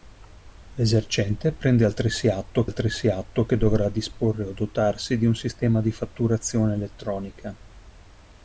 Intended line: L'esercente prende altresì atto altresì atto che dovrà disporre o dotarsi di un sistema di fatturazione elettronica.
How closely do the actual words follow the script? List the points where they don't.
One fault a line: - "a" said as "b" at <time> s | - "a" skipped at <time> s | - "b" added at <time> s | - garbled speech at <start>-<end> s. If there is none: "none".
none